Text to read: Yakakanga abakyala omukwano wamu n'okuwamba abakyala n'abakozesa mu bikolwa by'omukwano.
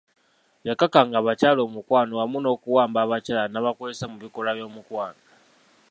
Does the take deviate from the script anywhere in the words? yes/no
no